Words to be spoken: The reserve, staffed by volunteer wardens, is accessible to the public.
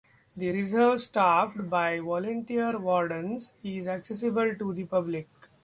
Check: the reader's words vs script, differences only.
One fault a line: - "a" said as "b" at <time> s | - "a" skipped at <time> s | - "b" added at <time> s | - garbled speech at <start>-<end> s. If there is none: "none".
none